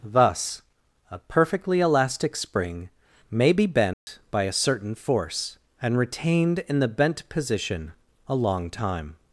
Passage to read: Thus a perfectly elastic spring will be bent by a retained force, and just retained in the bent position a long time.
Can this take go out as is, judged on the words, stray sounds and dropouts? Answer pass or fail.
fail